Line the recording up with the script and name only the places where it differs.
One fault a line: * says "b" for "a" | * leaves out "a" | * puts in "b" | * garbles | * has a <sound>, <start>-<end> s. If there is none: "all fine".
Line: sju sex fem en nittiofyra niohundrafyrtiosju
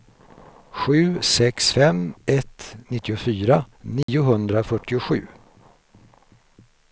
* says "ett" for "en"
* has a dropout, 4.0-4.1 s